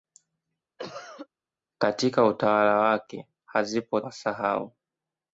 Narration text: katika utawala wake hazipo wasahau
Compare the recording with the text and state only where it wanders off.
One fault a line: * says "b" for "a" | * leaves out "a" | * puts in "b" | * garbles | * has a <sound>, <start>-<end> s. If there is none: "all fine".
* has a cough, 0.8-1.3 s